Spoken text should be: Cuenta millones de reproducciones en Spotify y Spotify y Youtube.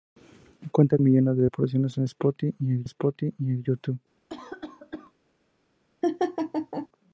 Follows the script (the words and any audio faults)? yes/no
no